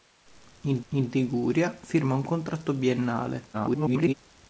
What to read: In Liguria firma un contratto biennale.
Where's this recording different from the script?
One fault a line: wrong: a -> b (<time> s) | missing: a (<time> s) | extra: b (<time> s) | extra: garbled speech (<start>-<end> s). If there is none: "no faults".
extra: in (0.9 s)
extra: garbled speech (3.5-4.1 s)